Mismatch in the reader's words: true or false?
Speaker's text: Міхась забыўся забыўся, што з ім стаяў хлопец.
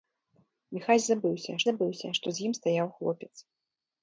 false